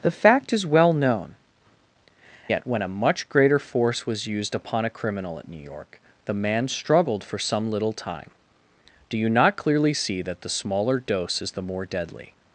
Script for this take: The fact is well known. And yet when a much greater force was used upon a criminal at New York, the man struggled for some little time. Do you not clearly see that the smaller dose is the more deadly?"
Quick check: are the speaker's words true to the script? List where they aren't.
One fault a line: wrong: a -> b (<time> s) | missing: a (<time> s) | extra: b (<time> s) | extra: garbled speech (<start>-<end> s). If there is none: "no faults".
missing: And (1.3 s)